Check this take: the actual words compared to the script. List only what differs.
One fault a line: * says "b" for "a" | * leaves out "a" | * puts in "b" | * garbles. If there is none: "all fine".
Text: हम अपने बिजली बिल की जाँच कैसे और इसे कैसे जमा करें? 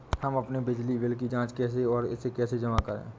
all fine